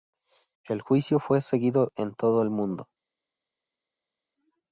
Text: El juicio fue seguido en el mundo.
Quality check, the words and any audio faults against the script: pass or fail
fail